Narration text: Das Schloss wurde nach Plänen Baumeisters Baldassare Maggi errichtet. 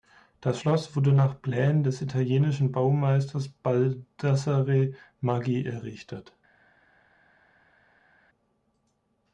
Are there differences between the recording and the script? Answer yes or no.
yes